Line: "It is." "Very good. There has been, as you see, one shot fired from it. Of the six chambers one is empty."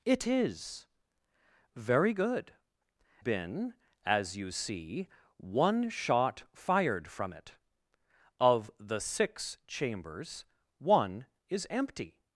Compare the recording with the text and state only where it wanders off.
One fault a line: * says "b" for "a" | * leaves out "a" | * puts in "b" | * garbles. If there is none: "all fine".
* leaves out "There has"